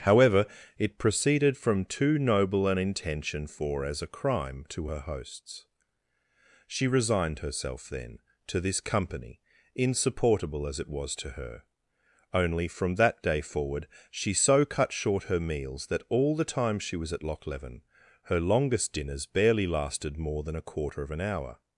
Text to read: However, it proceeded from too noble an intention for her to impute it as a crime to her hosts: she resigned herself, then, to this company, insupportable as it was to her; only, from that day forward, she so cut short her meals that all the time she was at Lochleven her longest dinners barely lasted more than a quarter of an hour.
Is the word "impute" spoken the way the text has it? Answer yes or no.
no